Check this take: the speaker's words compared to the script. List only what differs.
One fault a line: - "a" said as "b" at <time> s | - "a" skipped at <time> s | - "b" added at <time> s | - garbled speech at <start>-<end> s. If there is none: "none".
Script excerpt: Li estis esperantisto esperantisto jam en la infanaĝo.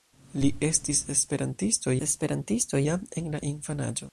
none